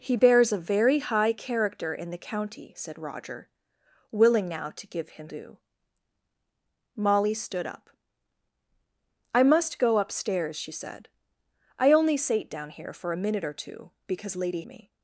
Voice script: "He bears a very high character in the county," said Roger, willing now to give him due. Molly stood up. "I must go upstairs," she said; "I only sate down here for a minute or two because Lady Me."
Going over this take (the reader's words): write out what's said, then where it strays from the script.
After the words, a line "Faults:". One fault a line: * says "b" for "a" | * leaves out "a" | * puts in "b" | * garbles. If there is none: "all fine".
"He bears a very high character in the county," said Roger, willing now to give him due. Molly stood up. "I must go upstairs," she said; "I only sate down here for a minute or two because Lady Me."
Faults:
all fine